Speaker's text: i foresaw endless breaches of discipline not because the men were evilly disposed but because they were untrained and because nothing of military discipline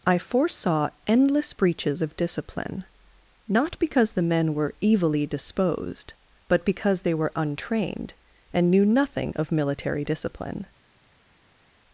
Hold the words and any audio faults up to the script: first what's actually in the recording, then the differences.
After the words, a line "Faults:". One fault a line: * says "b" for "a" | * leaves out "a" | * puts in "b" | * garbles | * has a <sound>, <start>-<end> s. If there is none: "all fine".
i foresaw endless breaches of discipline not because the men were evilly disposed but because they were untrained and knew nothing of military discipline
Faults:
* says "knew" for "because"